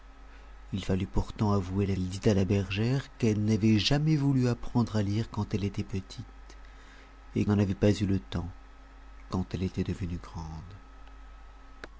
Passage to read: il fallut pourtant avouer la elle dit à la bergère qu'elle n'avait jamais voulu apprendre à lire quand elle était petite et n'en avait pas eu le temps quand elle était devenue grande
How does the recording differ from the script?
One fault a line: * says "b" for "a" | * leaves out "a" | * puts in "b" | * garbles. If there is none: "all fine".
all fine